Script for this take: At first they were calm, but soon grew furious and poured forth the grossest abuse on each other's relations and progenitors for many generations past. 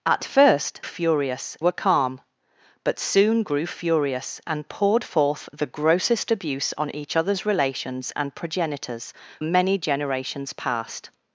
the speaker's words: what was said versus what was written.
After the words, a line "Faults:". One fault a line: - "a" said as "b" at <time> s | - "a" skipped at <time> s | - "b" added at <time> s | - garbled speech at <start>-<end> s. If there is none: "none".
At first furious were calm, but soon grew furious and poured forth the grossest abuse on each other's relations and progenitors many generations past.
Faults:
- "they" said as "furious" at 0.8 s
- "for" skipped at 9.1 s